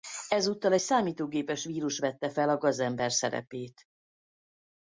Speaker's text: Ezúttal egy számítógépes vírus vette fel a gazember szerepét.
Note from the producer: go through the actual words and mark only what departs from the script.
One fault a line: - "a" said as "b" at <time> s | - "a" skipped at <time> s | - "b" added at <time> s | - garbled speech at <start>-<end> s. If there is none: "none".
none